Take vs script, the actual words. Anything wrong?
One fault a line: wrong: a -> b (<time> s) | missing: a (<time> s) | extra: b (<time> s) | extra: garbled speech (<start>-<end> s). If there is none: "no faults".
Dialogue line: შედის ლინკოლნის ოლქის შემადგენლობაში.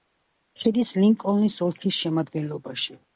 no faults